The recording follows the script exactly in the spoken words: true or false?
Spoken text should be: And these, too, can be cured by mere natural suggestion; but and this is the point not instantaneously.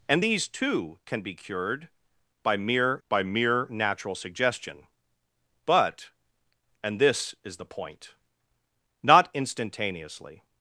false